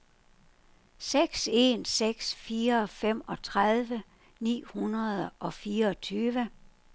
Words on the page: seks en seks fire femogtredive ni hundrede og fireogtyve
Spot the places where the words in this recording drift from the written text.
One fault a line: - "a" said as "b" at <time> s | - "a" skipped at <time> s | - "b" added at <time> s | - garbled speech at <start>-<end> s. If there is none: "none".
none